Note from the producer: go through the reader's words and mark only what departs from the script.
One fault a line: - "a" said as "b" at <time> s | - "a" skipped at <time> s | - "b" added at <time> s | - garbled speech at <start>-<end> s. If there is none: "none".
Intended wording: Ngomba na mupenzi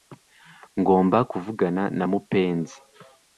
- "kuvugana" added at 1.3 s